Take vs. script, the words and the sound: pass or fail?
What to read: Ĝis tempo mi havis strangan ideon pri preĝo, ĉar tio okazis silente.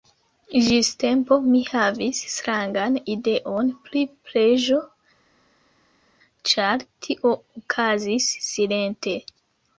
pass